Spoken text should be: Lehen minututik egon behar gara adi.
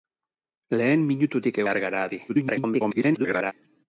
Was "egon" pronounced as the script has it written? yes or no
no